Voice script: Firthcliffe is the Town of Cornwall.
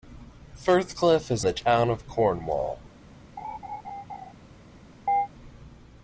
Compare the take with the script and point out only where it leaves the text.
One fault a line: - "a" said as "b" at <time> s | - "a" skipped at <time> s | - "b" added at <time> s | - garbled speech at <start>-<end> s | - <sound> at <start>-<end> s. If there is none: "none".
- laugh at 3.4-4.3 s
- chirp at 5.1-5.3 s